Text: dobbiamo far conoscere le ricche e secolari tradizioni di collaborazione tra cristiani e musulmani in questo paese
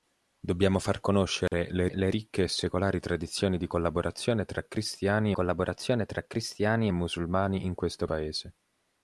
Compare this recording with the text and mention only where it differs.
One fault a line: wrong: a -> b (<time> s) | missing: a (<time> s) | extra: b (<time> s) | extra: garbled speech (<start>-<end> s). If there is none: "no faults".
extra: le (1.9 s)
extra: collaborazione tra cristiani (5.3 s)